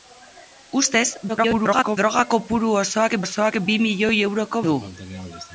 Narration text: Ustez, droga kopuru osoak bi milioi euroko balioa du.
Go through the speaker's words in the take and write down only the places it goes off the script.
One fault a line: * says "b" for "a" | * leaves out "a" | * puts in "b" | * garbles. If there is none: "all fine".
* garbles
* puts in "osoak"
* leaves out "balioa"